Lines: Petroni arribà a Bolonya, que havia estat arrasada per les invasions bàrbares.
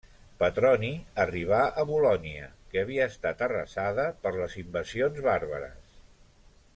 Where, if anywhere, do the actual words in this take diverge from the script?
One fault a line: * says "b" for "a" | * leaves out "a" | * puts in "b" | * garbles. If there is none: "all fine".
all fine